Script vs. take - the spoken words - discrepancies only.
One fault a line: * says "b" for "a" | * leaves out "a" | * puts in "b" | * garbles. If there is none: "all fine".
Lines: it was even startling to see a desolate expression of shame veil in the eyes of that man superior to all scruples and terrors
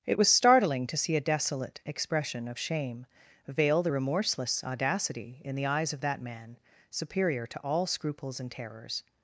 * leaves out "even"
* puts in "the remorseless audacity"